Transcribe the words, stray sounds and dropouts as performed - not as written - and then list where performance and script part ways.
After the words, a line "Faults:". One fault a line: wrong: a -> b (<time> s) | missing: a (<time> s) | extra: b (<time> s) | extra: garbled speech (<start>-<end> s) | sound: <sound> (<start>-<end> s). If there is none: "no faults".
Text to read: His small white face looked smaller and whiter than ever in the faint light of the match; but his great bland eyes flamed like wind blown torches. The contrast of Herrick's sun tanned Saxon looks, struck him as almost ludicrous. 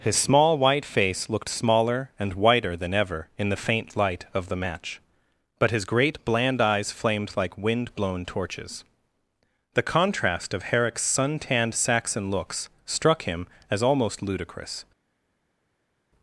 His small white face looked smaller and whiter than ever in the faint light of the match; but his great bland eyes flamed like wind blown torches. The contrast of Herrick's sun tanned Saxon looks, struck him as almost ludicrous.
Faults:
no faults